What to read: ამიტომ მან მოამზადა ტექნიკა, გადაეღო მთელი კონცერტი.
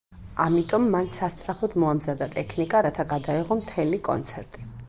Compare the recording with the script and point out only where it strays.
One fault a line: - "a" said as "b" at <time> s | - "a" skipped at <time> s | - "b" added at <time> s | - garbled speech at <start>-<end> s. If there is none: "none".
- "სასწრაფოდ" added at 1.1 s
- "რათა" added at 2.9 s